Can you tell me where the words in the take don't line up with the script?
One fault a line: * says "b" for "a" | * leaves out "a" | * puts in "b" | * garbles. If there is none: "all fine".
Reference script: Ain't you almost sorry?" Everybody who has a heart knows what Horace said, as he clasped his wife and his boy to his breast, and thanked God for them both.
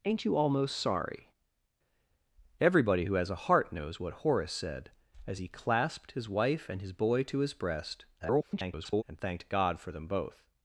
* garbles